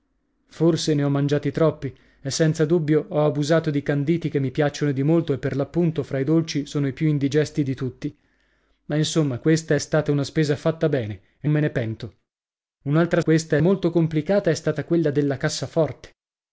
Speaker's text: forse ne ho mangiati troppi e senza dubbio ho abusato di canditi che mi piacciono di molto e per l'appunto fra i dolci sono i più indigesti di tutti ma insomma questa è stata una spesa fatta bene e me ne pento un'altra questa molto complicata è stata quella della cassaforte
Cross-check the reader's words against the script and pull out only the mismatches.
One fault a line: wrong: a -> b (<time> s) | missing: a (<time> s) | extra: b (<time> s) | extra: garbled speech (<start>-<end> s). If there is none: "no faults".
no faults